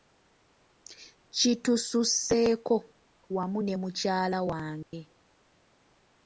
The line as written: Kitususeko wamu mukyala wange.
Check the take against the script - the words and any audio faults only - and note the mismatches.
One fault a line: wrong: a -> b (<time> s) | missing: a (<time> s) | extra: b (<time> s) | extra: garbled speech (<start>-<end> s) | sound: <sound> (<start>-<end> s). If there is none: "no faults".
extra: ne (3.6 s)
sound: dropout (4.8-4.9 s)